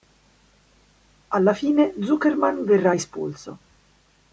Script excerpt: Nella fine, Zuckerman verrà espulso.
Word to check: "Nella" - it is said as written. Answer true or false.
false